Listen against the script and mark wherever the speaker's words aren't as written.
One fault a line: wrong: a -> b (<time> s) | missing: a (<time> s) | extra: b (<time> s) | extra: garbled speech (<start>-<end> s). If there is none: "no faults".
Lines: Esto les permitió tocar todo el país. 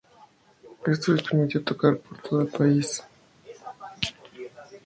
extra: por (2.0 s)